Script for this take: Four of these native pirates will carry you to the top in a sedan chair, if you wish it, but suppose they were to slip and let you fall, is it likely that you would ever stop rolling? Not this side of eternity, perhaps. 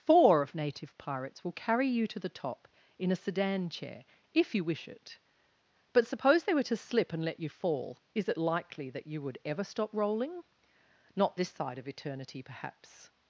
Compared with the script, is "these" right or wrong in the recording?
wrong